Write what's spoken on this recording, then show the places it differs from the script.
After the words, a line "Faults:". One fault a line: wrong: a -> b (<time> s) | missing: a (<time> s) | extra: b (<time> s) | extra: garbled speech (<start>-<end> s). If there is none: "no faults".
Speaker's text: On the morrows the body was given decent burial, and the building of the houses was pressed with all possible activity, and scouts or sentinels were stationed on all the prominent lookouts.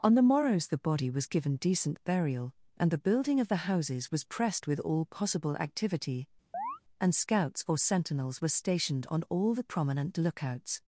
On the morrows the body was given decent burial, and the building of the houses was pressed with all possible activity, and scouts or sentinels were stationed on all the prominent lookouts.
Faults:
no faults